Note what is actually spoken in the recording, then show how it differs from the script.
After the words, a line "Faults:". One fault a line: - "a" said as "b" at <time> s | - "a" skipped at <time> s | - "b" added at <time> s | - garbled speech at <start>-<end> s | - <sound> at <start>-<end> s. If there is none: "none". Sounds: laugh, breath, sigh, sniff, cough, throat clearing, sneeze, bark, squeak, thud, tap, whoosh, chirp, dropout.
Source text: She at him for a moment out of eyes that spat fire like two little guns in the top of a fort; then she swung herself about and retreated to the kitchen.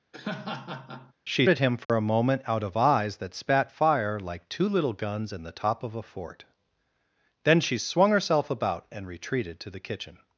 She at him for a moment out of eyes that spat fire like two little guns in the top of a fort; then she swung herself about and retreated to the kitchen.
Faults:
- laugh at 0.1-1.1 s
- dropout at 1.8-1.9 s